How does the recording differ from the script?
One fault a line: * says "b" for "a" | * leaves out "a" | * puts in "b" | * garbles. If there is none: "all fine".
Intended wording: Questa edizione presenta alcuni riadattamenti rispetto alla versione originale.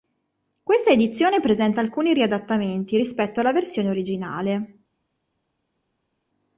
all fine